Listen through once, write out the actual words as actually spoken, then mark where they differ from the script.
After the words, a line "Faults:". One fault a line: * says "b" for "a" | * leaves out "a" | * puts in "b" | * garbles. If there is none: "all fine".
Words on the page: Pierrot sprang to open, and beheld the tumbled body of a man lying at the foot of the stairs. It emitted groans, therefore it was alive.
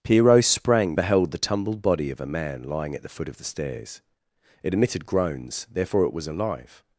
Pierrot sprang beheld the tumbled body of a man lying at the foot of the stairs. It emitted groans, therefore it was alive.
Faults:
* leaves out "to open and"